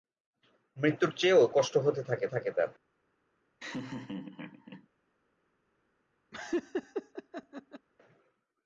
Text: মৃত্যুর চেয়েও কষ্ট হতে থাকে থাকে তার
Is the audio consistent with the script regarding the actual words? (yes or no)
yes